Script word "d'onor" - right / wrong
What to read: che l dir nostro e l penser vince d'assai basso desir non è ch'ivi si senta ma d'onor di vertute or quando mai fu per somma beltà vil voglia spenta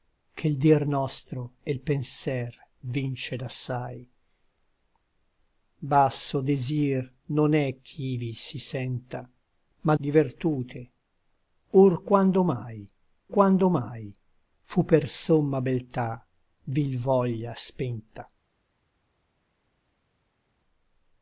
wrong